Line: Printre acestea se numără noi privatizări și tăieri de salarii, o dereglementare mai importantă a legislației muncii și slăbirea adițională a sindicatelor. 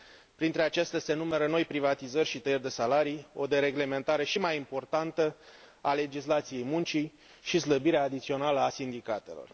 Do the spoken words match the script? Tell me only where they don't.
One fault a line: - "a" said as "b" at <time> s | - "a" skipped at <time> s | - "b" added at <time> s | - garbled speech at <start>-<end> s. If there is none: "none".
- "și" added at 4.2 s